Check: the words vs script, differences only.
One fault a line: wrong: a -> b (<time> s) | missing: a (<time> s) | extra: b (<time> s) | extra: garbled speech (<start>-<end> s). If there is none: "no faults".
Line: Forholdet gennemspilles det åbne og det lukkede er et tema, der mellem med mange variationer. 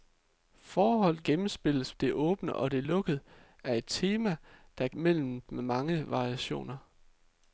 no faults